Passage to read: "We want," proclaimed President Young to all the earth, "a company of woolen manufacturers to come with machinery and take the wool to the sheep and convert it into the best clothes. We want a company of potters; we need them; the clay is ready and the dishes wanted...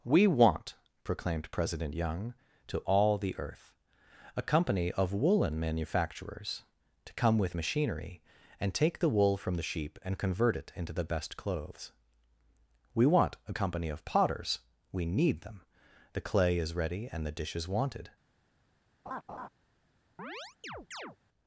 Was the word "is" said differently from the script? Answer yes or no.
no